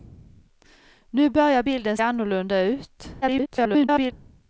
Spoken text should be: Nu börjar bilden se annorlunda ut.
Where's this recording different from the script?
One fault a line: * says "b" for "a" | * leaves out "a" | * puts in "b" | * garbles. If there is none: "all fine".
* leaves out "se"
* garbles